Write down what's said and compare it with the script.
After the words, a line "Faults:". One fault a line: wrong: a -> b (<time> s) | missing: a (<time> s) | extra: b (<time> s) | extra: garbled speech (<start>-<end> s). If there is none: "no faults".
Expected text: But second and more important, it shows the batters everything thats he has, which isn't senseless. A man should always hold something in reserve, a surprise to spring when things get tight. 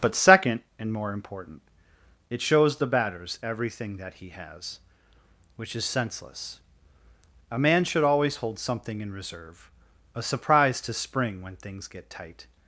But second and more important, it shows the batters everything that he has, which is senseless. A man should always hold something in reserve, a surprise to spring when things get tight.
Faults:
wrong: thats -> that (4.0 s)
wrong: isn't -> is (5.7 s)